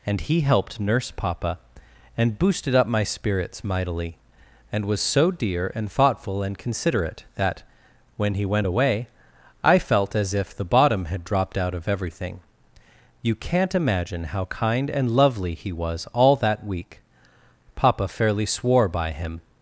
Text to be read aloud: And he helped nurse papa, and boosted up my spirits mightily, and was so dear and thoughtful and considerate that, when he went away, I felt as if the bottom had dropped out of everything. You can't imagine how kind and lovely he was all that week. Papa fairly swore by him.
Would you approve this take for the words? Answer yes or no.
yes